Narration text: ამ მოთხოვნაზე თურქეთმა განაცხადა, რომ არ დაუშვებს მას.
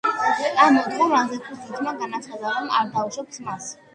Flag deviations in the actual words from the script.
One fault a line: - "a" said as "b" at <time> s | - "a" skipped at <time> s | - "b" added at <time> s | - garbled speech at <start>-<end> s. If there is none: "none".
none